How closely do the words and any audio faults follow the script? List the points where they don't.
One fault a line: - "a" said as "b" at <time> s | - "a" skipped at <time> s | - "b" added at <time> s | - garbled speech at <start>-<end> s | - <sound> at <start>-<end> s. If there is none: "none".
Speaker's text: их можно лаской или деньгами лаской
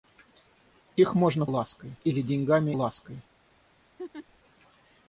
- laugh at 4.0-4.3 s